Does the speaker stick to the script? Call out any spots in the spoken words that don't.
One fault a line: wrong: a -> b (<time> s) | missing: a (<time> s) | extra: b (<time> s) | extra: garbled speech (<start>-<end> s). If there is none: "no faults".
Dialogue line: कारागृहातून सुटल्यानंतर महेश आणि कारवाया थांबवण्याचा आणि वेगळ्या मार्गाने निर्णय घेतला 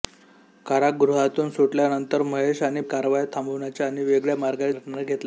no faults